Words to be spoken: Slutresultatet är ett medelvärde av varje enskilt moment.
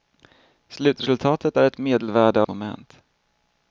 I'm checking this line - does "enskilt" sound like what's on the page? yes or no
no